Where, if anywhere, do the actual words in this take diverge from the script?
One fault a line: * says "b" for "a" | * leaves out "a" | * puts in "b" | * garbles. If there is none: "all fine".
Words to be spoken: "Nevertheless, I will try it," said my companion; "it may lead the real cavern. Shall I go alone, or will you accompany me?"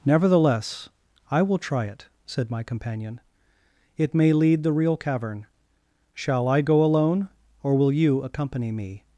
all fine